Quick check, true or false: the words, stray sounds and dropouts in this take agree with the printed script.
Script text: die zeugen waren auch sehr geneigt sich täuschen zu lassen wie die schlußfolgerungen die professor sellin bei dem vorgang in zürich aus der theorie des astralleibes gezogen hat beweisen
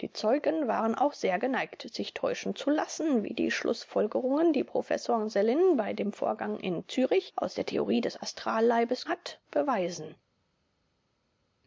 false